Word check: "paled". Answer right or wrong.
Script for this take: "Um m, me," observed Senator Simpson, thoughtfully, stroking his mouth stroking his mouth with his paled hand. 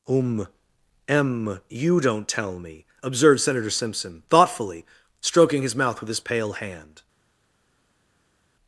wrong